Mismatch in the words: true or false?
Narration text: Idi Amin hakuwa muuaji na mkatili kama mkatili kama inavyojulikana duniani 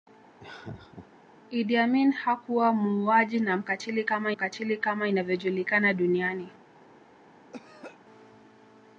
false